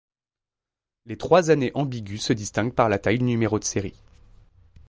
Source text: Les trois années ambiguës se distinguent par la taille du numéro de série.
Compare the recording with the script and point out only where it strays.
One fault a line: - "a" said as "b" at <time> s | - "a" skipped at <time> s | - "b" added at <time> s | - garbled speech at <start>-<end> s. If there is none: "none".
- "du" skipped at 3.2 s